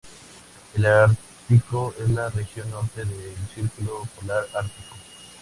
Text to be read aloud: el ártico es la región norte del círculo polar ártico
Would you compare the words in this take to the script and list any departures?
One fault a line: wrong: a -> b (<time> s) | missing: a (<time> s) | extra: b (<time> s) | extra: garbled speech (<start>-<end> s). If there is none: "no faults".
no faults